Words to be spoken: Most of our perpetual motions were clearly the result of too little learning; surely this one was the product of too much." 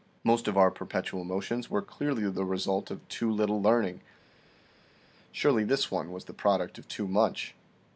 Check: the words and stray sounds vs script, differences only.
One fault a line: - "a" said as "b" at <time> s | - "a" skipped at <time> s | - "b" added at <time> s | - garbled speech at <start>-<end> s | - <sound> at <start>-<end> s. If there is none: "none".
none